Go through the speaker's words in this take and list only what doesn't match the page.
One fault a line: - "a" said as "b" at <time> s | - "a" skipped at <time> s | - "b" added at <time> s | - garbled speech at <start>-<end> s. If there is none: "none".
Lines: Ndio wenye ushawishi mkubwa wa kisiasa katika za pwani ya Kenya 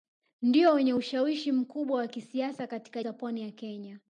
none